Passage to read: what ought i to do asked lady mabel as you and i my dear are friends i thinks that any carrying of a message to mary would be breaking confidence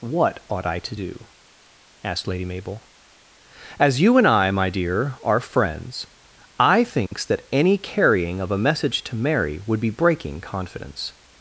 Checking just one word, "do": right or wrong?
right